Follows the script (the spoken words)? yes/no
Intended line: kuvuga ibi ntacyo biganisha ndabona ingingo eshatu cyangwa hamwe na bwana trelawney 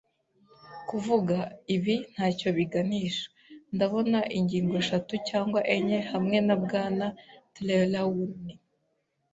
no